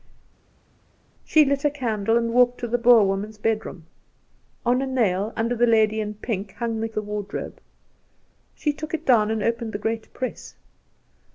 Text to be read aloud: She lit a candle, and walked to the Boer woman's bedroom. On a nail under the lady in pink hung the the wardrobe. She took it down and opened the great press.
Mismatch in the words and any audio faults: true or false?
false